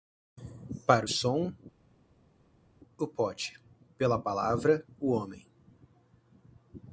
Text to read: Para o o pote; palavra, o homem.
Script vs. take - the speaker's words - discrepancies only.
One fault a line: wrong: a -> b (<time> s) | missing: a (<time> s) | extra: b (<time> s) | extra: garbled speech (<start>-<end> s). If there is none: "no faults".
extra: som (1.1 s)
extra: pela (4.0 s)